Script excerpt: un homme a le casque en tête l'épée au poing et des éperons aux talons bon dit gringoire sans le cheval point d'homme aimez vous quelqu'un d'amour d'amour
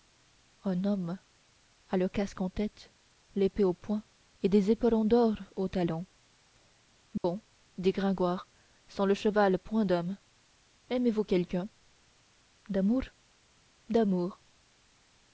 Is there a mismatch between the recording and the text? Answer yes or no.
yes